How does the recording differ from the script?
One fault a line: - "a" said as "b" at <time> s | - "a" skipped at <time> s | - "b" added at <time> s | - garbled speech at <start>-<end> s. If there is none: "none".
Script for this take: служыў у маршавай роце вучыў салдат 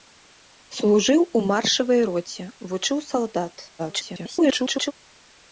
- garbled speech at 3.8-4.9 s